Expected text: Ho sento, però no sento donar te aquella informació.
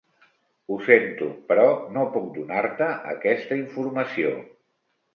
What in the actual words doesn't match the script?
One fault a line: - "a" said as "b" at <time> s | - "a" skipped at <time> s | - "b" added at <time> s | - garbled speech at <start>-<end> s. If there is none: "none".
- "sento" said as "puc" at 2.2 s
- "aquella" said as "aquesta" at 3.2 s